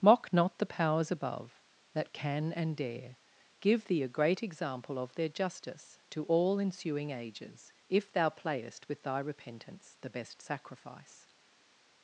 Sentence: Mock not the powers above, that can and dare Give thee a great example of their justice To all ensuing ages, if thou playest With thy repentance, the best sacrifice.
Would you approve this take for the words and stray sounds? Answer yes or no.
yes